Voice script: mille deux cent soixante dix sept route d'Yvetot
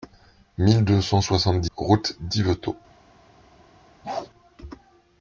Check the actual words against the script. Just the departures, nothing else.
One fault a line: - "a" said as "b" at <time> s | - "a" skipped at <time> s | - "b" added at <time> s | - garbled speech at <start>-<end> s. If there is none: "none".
- "sept" skipped at 1.7 s